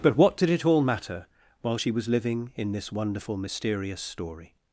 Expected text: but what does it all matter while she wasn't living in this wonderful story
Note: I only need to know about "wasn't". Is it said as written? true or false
false